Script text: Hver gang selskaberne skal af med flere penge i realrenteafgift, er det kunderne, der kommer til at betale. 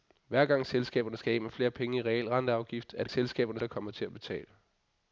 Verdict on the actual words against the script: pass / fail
fail